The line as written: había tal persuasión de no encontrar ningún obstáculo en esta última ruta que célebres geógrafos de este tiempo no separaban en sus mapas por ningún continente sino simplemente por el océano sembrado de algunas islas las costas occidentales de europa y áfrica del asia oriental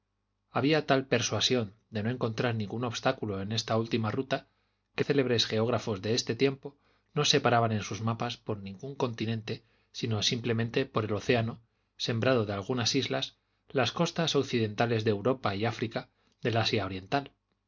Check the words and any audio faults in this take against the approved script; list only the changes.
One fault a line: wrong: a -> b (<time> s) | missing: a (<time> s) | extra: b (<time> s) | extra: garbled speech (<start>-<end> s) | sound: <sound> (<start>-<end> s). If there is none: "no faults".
no faults